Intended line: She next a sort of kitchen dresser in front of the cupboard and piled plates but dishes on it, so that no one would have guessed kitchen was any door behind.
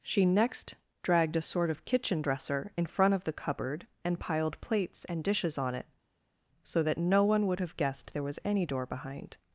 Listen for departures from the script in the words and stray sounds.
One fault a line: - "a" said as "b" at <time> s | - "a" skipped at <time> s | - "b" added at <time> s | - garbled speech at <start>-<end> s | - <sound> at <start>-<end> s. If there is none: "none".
- "dragged" added at 1.0 s
- "but" said as "and" at 5.1 s
- "kitchen" said as "there" at 8.1 s